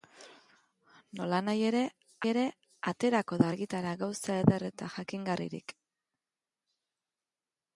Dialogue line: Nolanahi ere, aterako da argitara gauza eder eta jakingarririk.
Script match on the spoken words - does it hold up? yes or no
no